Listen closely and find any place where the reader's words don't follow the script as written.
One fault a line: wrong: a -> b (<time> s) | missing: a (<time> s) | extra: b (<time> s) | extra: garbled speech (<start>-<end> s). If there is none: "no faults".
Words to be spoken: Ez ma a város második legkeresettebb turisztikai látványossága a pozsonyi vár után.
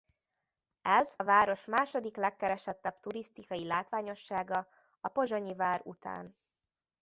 missing: ma (1.1 s)